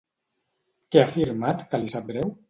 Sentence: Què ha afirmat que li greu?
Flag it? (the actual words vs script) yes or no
yes